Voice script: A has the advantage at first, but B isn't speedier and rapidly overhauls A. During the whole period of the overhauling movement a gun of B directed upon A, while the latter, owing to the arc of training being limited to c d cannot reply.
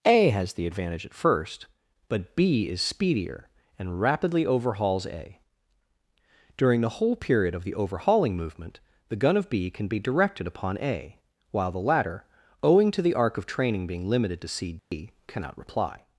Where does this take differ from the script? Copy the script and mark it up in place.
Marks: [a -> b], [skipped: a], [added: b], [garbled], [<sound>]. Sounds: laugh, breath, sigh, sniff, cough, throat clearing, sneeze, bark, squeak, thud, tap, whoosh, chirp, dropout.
A has the advantage at first, but B [isn't -> is] speedier and rapidly overhauls A. During the whole period of the overhauling movement [a -> the] gun of B [added: can be] directed upon A, while the latter, owing to the arc of training being limited to c d [dropout] cannot reply.